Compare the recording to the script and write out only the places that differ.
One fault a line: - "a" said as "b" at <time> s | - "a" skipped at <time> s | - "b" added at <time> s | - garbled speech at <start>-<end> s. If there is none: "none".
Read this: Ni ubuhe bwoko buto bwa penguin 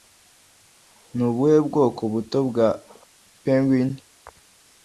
none